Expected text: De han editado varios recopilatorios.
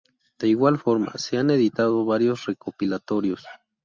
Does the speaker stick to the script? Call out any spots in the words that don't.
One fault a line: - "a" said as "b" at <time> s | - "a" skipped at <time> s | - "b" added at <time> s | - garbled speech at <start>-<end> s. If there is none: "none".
- "igual forma se" added at 0.5 s